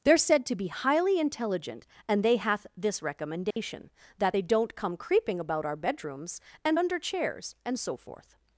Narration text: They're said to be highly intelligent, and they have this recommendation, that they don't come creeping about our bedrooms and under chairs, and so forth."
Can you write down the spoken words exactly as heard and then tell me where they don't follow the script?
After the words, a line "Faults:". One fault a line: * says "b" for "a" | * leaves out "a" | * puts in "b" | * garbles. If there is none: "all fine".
They're said to be highly intelligent, and they hath this recommendation, that they don't come creeping about our bedrooms and under chairs, and so forth."
Faults:
* says "hath" for "have"